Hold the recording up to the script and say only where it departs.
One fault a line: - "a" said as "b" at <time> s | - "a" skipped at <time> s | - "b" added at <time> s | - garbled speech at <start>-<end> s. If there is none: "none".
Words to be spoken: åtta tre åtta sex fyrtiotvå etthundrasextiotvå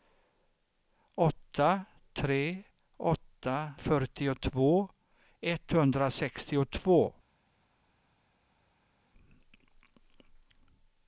- "sex" skipped at 3.7 s